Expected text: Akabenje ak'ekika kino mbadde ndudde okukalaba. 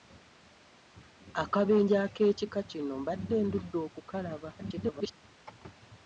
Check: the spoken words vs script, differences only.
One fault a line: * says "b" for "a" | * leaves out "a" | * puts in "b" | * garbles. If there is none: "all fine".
* garbles